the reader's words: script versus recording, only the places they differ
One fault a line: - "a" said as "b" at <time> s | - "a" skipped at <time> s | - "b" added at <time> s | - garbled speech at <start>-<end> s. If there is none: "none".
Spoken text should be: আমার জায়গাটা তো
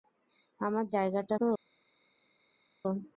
none